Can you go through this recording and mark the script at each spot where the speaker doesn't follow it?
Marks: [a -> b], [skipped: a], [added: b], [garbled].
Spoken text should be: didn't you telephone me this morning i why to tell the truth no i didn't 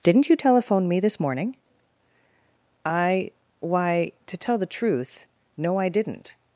didn't you telephone me this morning i why to tell the truth no i didn't